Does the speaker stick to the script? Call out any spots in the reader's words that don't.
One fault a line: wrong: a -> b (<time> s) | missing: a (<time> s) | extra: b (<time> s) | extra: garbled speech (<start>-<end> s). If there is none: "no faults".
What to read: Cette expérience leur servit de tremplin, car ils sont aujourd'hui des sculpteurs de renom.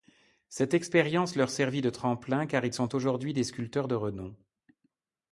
no faults